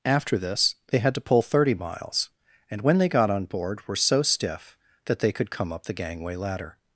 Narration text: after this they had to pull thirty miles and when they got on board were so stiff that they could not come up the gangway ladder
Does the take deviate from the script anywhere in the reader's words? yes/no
yes